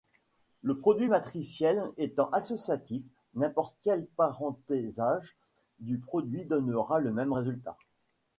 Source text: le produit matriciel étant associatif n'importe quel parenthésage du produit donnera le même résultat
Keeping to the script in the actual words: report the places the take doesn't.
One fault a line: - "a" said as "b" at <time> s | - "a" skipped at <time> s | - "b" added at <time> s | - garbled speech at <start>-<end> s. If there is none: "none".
none